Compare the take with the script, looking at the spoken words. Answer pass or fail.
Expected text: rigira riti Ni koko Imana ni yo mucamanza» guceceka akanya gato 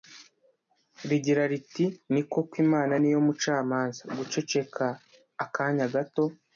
pass